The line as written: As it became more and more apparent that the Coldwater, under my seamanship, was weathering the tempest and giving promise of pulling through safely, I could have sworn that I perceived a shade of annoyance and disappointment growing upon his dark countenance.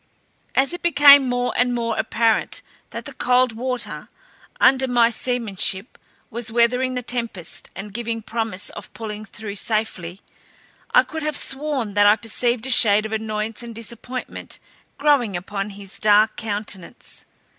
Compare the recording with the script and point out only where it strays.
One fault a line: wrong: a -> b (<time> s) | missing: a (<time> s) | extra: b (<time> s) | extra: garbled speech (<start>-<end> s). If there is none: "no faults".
no faults